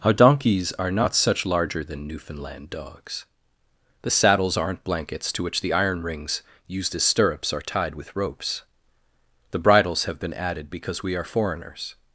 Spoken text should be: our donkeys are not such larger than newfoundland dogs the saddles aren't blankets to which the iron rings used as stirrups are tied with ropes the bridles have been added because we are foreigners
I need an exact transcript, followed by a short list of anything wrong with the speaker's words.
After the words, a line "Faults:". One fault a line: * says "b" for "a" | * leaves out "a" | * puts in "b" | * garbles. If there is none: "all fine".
our donkeys are not such larger than newfoundland dogs the saddles aren't blankets to which the iron rings used as stirrups are tied with ropes the bridles have been added because we are foreigners
Faults:
all fine